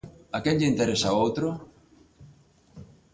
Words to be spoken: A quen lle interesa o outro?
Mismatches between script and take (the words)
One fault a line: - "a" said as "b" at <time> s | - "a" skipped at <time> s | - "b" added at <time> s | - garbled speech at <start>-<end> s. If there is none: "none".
none